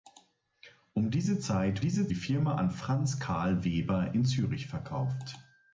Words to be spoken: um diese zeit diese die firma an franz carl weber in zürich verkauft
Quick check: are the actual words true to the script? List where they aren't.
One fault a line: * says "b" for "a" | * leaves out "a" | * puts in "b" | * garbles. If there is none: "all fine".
all fine